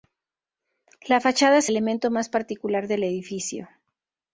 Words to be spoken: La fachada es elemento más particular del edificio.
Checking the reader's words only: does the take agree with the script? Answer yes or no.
yes